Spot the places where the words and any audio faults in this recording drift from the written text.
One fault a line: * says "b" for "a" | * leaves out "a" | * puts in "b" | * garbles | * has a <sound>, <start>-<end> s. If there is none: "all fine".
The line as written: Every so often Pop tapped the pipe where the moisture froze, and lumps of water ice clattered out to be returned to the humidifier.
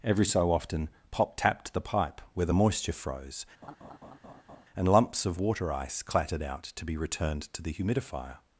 * has a laugh, 3.6-4.7 s